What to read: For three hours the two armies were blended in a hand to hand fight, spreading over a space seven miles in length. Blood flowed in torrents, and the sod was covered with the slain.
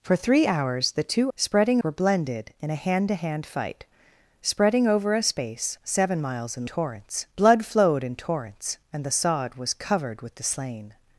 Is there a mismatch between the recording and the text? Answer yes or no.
yes